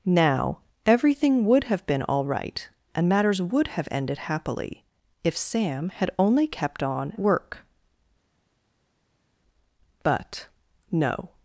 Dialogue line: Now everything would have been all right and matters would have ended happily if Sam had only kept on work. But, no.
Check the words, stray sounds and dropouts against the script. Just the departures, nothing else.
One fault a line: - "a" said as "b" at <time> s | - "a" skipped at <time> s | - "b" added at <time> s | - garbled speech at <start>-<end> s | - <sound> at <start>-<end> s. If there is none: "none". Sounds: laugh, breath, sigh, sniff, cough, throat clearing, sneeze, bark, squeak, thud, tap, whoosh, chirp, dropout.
none